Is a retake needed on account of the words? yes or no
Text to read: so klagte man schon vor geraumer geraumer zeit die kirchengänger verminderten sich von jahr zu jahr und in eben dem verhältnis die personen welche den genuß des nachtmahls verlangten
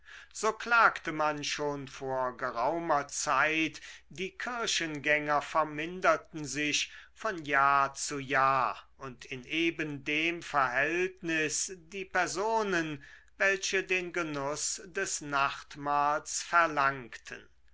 yes